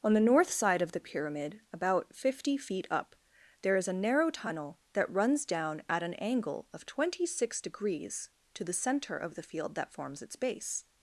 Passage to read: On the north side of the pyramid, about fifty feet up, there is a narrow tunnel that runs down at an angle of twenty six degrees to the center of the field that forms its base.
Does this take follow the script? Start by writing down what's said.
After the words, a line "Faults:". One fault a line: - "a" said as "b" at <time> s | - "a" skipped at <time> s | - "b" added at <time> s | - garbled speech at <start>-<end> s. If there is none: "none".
On the north side of the pyramid, about fifty feet up, there is a narrow tunnel that runs down at an angle of twenty six degrees to the center of the field that forms its base.
Faults:
none